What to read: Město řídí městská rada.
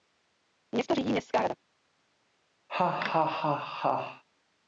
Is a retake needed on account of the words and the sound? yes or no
yes